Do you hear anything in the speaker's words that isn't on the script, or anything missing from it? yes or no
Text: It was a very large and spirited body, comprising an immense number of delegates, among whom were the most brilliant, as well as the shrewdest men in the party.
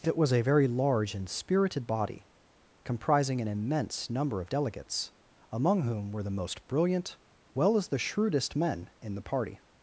yes